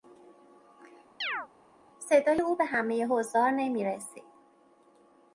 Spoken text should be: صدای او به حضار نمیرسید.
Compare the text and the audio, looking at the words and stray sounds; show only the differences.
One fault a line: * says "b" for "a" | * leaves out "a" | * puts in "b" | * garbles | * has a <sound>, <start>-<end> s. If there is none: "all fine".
* has a chirp, 1.2-1.5 s
* puts in "همهی"